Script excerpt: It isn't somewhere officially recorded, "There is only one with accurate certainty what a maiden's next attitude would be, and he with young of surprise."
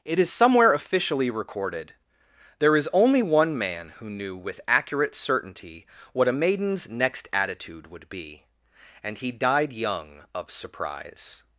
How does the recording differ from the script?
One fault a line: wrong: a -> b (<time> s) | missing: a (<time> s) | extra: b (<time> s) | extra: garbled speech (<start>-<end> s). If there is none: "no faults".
wrong: isn't -> is (0.2 s)
extra: man who knew (3.6 s)
wrong: with -> died (9.3 s)